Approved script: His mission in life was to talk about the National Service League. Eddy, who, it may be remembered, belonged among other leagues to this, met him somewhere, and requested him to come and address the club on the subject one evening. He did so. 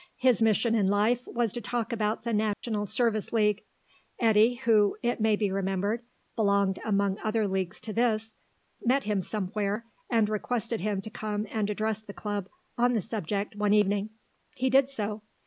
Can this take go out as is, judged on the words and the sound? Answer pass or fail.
fail